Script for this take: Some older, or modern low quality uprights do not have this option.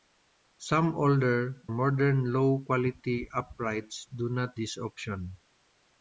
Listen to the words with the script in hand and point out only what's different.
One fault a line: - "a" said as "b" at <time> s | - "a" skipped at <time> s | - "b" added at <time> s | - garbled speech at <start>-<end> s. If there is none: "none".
- "or" skipped at 1.6 s
- "have" skipped at 4.6 s